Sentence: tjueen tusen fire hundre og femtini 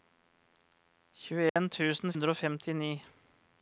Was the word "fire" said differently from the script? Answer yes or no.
yes